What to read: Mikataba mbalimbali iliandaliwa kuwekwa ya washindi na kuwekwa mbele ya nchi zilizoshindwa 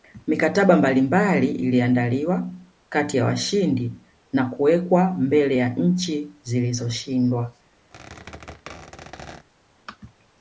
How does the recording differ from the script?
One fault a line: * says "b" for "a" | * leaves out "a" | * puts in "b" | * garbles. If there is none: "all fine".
* says "kati" for "kuwekwa"